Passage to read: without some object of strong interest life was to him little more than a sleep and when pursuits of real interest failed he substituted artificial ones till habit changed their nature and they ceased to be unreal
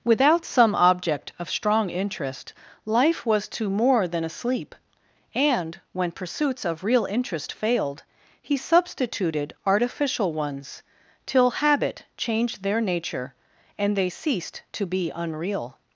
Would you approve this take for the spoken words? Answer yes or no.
no